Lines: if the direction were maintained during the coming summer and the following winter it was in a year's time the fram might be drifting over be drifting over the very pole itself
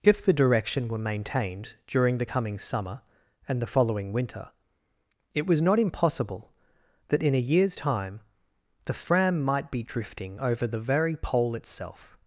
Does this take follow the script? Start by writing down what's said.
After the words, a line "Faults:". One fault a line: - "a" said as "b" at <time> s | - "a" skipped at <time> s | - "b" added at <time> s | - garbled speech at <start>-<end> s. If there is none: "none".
if the direction were maintained during the coming summer and the following winter it was not impossible that in a year's time the fram might be drifting over the very pole itself
Faults:
- "not impossible that" added at 5.6 s
- "be drifting over" skipped at 10.6 s